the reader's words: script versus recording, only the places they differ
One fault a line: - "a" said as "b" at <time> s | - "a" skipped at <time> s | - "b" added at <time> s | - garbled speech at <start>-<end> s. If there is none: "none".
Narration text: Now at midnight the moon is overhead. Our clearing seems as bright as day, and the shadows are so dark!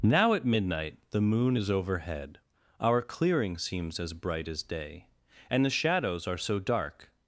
none